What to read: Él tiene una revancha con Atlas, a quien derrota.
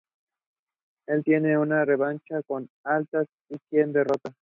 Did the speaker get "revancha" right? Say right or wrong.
right